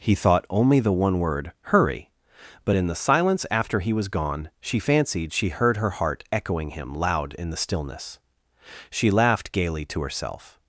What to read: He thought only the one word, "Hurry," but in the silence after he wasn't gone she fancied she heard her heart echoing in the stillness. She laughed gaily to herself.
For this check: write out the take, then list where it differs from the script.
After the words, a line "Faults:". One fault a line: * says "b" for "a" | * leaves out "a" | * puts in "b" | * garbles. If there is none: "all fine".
He thought only the one word, "Hurry," but in the silence after he was gone she fancied she heard her heart echoing him, loud in the stillness. She laughed gaily to herself.
Faults:
* says "was" for "wasn't"
* puts in "him loud"